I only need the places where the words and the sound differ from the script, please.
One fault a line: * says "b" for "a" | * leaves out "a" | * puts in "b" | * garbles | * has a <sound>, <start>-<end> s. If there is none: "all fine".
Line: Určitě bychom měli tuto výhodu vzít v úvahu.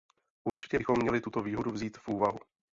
* has a dropout, 0.5-0.6 s